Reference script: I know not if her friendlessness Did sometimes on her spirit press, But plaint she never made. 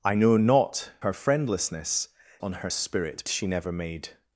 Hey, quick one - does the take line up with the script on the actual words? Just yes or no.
no